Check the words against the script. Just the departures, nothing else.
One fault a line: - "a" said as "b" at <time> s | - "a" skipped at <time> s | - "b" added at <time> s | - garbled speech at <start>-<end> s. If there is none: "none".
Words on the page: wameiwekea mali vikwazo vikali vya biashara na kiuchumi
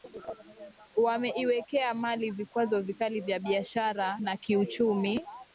none